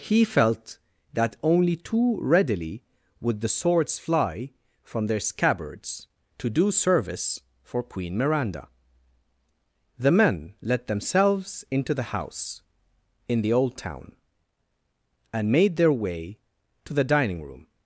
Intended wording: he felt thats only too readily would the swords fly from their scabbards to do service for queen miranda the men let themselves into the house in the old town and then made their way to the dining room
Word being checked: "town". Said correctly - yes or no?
yes